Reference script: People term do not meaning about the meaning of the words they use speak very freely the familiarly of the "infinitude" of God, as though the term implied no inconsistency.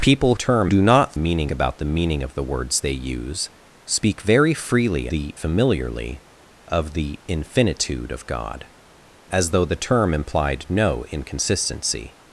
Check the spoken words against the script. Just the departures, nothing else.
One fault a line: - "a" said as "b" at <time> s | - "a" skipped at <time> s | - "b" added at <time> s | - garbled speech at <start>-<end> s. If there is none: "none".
none